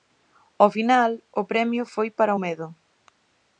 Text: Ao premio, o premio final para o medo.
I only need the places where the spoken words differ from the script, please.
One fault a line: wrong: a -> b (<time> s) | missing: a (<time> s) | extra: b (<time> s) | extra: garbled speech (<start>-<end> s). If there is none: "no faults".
wrong: premio -> final (0.8 s)
wrong: final -> foi (1.9 s)